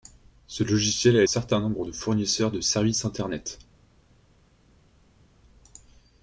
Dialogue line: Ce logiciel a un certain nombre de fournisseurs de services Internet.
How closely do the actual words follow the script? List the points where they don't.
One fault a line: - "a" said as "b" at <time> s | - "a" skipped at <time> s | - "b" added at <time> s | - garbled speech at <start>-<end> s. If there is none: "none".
none